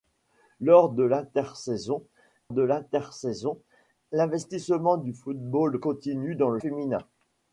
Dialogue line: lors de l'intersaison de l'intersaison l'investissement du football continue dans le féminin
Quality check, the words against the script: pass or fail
pass